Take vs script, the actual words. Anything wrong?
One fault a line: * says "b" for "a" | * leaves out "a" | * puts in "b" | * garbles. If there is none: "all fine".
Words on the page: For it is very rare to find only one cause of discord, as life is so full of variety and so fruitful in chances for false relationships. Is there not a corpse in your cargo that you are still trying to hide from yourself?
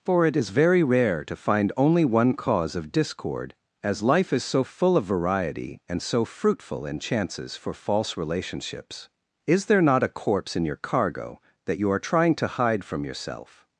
* leaves out "still"